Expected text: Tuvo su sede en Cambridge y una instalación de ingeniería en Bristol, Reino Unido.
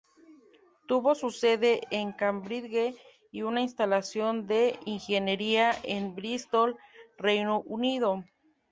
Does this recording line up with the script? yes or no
yes